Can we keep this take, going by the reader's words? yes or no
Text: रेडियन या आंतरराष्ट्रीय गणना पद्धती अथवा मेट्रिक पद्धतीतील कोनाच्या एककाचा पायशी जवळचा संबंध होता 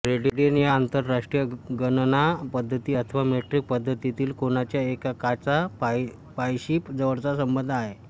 no